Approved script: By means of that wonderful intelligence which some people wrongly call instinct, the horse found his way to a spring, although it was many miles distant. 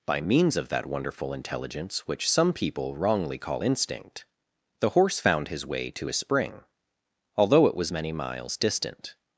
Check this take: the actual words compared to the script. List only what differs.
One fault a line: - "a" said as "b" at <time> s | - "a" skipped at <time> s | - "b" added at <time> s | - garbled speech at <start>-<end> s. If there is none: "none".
none